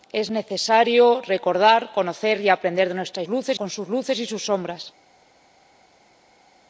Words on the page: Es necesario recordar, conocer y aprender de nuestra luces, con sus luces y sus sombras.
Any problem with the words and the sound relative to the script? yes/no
no